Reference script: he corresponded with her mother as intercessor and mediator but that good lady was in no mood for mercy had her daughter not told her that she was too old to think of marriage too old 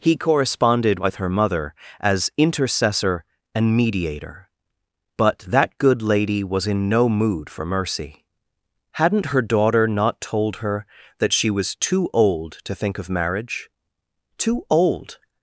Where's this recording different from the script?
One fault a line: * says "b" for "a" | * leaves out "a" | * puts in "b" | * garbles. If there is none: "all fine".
* says "hadn't" for "had"